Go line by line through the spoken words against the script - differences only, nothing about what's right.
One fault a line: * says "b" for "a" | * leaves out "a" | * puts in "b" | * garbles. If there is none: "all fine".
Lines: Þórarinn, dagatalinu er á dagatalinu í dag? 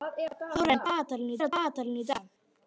all fine